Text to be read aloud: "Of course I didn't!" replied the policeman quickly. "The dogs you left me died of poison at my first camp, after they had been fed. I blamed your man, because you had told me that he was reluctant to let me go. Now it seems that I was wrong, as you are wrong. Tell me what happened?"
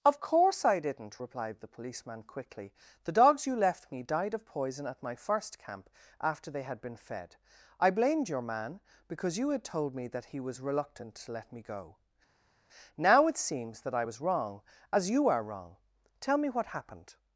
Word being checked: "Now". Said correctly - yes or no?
yes